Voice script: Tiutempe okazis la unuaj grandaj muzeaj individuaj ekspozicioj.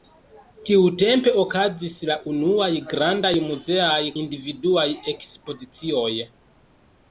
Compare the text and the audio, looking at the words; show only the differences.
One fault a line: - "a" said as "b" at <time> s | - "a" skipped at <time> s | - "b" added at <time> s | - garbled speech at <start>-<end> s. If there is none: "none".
none